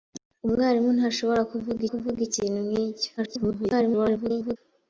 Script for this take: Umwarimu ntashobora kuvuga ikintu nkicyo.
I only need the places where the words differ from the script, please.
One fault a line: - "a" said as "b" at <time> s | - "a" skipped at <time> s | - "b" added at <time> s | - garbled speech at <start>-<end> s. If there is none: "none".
- "kuvuga" added at 1.9 s
- garbled speech at 3.2-4.6 s